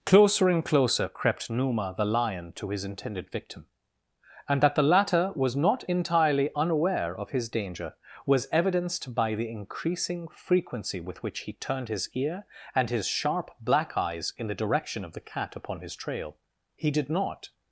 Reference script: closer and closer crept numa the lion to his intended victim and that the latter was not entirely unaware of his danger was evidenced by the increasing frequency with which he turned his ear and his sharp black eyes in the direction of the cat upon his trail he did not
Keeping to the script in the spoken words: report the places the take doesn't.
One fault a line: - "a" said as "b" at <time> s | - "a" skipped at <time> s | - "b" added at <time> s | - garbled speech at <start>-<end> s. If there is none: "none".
none